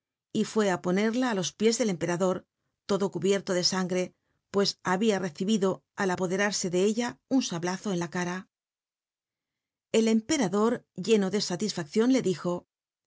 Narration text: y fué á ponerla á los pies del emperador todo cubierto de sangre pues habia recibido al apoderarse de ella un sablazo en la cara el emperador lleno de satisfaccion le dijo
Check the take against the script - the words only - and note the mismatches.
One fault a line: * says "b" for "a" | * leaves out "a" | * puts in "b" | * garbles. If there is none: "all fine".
all fine